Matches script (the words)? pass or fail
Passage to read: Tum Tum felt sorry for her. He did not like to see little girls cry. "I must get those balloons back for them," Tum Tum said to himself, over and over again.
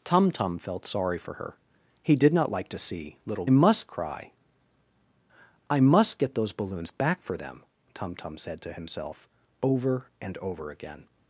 fail